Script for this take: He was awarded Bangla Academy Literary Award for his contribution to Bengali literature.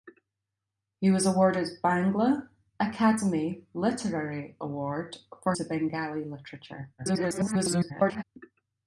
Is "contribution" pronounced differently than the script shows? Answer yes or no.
yes